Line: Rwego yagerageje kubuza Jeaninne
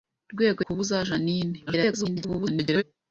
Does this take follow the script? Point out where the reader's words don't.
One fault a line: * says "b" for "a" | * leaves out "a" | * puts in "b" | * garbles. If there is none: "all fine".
* leaves out "yagerageje"
* garbles